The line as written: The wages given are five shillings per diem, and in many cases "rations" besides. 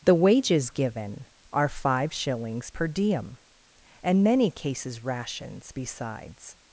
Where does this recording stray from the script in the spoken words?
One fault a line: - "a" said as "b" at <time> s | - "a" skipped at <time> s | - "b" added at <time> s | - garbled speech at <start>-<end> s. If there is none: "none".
- "in" skipped at 4.2 s